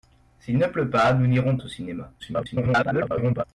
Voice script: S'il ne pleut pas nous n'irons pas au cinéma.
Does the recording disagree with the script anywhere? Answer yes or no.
yes